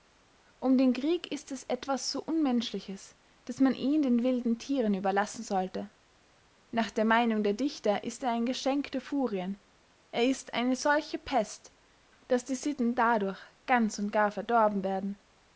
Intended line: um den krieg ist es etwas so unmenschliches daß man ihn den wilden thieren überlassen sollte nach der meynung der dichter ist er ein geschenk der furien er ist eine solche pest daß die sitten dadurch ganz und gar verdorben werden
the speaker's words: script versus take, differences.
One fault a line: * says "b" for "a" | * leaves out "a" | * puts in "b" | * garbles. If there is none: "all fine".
all fine